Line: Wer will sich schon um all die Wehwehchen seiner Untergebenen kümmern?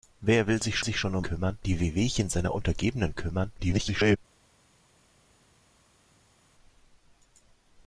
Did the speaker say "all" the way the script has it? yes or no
no